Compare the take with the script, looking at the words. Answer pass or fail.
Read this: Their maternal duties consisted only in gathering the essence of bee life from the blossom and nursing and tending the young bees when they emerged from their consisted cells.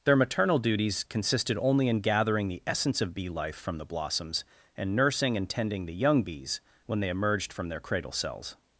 fail